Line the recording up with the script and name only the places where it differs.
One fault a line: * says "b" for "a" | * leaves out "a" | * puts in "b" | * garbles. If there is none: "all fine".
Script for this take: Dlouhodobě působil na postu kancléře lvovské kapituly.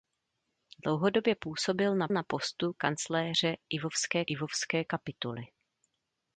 * puts in "na"
* puts in "lvovské"